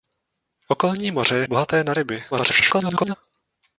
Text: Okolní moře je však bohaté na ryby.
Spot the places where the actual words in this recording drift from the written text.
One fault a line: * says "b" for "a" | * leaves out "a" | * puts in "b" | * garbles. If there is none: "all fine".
* leaves out "však"
* garbles